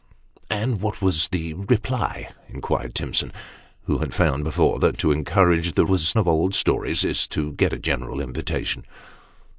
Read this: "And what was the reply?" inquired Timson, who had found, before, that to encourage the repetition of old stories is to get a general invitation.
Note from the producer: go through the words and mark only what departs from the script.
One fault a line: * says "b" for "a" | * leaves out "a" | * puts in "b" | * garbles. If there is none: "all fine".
* says "was" for "repetition"